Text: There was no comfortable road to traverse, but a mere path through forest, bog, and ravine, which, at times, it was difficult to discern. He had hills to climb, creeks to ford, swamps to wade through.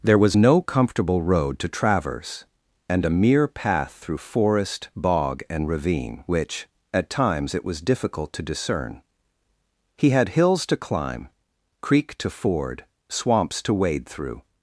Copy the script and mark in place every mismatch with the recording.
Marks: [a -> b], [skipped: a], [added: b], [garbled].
There was no comfortable road to traverse, [but -> and] a mere path through forest, bog, and ravine, which, at times, it was difficult to discern. He had hills to climb, [creeks -> creek] to ford, swamps to wade through.